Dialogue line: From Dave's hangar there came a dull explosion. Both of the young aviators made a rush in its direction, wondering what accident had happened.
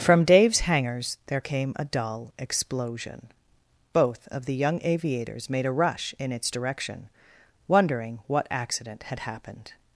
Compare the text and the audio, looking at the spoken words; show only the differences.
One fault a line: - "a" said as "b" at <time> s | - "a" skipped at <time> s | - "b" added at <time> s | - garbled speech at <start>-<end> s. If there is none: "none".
- "hangar" said as "hangars" at 0.6 s